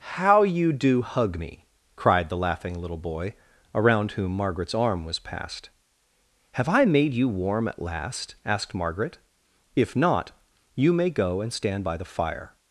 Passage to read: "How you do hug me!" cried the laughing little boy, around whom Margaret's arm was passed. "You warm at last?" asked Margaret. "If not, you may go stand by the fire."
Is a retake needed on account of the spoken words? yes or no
yes